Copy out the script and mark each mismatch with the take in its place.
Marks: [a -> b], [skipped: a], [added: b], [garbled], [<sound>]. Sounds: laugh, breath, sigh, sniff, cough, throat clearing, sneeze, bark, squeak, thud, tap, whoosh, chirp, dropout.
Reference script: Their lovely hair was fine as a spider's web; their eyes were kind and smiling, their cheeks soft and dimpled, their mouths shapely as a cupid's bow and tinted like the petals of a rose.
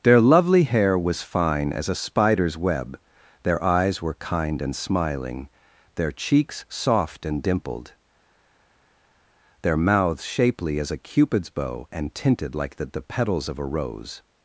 Their lovely hair was fine as a spider's web; their eyes were kind and smiling, their cheeks soft and dimpled, their mouths shapely as a cupid's bow and tinted like the [added: the] petals of a rose.